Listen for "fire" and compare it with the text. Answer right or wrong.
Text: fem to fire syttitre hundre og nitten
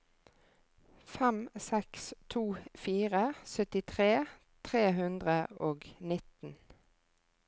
right